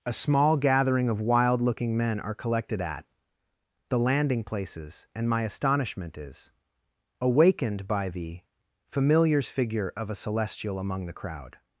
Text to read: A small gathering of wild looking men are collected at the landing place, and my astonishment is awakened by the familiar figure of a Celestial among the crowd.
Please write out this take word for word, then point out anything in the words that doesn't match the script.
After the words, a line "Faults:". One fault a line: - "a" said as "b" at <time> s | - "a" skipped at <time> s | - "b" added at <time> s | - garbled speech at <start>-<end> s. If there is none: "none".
A small gathering of wild looking men are collected at the landing places, and my astonishment is awakened by the familiars figure of a Celestial among the crowd.
Faults:
- "place" said as "places" at 4.4 s
- "familiar" said as "familiars" at 8.9 s